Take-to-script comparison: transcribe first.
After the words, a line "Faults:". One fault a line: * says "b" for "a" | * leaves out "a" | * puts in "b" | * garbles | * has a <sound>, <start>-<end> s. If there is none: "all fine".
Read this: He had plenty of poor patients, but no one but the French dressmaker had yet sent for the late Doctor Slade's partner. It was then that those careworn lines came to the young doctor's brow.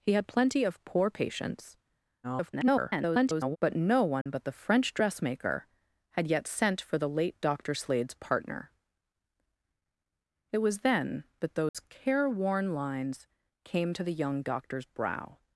He had plenty of poor patients, [garbled] but no one but the French dressmaker had yet sent for the late Doctor Slade's partner. It was then that those careworn lines came to the young doctor's brow.
Faults:
* garbles
* has a dropout, 4.2-4.3 s
* has a dropout, 11.7-11.7 s